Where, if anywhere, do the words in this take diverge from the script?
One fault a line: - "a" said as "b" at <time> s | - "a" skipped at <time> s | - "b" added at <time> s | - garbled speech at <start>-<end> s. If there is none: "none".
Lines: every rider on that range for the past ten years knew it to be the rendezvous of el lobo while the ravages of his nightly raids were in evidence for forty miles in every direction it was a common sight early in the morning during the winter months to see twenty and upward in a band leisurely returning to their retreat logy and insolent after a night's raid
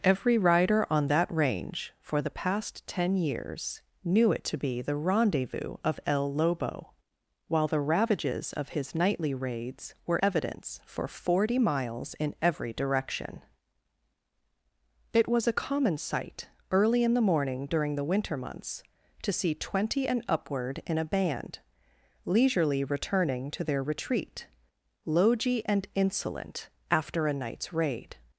- "in" skipped at 10.2 s